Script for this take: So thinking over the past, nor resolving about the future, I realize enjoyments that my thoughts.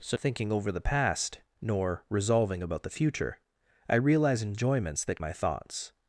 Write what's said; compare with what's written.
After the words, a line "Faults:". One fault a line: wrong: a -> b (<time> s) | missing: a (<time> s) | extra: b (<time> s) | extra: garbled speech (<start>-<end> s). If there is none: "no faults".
So thinking over the past, nor resolving about the future, I realize enjoyments that my thoughts.
Faults:
no faults